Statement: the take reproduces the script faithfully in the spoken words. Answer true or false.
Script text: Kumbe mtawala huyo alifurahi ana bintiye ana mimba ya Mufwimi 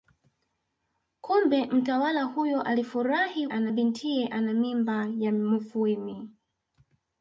true